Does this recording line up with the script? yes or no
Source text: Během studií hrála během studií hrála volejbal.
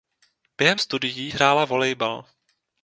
no